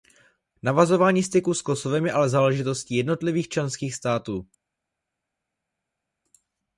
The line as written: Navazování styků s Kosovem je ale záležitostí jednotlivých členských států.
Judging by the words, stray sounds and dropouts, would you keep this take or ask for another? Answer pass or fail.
pass